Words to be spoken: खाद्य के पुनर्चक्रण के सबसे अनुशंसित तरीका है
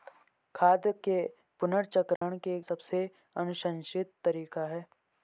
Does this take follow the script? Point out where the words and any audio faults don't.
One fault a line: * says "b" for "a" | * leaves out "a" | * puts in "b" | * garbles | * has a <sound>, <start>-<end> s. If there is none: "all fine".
* has a dropout, 2.2-2.2 s